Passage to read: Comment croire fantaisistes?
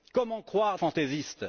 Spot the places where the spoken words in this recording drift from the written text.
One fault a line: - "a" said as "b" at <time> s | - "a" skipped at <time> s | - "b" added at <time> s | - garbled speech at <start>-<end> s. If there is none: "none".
none